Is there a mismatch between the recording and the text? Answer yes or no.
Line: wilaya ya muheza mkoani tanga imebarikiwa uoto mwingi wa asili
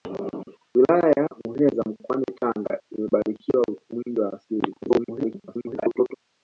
yes